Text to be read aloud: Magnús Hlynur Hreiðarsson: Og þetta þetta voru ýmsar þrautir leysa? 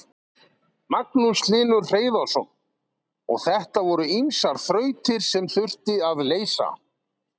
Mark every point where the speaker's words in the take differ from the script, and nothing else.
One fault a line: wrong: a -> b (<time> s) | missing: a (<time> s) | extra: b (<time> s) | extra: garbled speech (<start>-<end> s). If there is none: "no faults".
missing: þetta (3.8 s)
extra: sem þurfti að (5.3 s)